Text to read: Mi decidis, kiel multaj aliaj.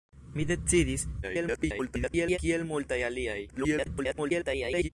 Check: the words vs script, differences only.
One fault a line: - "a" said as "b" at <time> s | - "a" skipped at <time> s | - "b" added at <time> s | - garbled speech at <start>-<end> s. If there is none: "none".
- garbled speech at 1.2-2.4 s
- garbled speech at 3.5-4.9 s